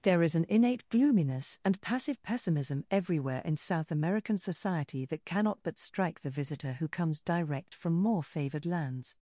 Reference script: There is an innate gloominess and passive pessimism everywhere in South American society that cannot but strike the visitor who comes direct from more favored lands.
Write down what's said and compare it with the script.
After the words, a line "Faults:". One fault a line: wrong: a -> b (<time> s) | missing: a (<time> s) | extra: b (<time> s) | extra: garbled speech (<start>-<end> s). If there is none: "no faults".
There is an innate gloominess and passive pessimism everywhere in South American society that cannot but strike the visitor who comes direct from more favored lands.
Faults:
no faults